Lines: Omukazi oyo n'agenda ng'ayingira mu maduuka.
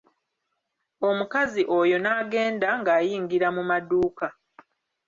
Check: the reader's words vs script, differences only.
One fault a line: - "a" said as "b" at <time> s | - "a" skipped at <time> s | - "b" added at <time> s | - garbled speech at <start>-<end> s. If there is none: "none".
none